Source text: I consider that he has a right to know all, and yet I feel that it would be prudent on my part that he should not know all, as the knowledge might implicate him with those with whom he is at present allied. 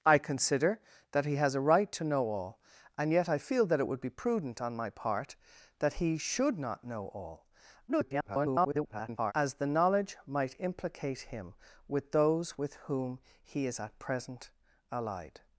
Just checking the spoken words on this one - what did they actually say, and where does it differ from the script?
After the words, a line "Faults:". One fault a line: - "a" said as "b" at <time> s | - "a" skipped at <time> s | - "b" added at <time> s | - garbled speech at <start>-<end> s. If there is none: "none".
I consider that he has a right to know all, and yet I feel that it would be prudent on my part that he should not know all, [garbled] as the knowledge might implicate him with those with whom he is at present allied.
Faults:
- garbled speech at 7.9-9.3 s